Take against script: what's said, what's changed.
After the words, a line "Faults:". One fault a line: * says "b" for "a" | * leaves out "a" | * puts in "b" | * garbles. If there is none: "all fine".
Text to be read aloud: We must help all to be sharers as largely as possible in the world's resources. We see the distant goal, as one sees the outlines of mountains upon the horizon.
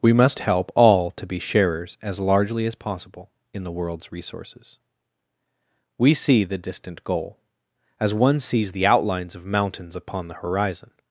We must help all to be sharers as largely as possible in the world's resources. We see the distant goal, as one sees the outlines of mountains upon the horizon.
Faults:
all fine